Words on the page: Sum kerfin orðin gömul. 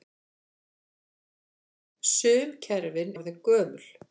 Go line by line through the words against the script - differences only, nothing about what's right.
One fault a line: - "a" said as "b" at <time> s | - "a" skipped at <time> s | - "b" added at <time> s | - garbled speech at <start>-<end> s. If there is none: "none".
none